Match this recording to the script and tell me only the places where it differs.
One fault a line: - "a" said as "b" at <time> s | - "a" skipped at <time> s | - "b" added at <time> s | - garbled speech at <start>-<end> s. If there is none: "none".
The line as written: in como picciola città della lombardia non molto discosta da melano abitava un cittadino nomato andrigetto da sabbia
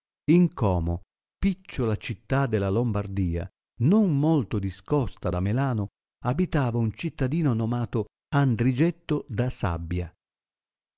none